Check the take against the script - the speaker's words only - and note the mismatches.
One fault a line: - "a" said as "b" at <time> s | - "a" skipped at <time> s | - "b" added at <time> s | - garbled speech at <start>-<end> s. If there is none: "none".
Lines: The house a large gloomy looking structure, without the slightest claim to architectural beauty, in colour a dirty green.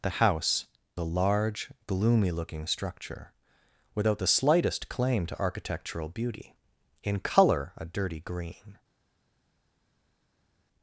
none